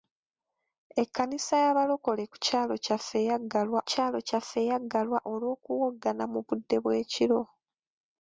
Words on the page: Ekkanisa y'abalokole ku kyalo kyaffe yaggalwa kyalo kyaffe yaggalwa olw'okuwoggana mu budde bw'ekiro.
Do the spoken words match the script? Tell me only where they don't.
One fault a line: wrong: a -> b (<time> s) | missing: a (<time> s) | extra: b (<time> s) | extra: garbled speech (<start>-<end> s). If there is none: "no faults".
no faults